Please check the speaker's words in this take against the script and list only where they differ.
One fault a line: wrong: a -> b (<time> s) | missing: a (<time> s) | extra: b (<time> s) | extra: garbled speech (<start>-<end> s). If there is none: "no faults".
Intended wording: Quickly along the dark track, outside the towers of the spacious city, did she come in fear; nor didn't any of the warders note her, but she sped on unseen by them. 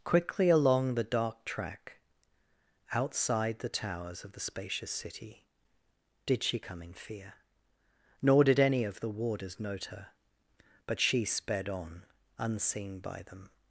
wrong: didn't -> did (8.4 s)